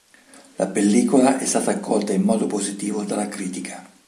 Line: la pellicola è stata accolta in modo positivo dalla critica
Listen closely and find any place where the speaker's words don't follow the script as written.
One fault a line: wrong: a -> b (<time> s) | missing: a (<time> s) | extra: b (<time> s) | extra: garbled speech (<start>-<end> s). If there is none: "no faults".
no faults